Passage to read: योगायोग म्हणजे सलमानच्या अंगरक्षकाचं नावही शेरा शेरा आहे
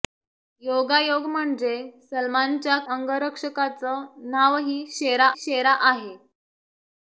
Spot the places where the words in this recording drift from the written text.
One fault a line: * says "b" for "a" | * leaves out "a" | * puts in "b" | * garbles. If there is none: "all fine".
all fine